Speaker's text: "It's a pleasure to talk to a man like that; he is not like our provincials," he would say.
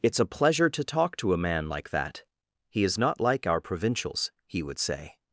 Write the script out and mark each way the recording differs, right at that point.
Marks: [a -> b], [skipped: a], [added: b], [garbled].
"It's a pleasure to talk to a man like that; he is not like our provincials," he would say.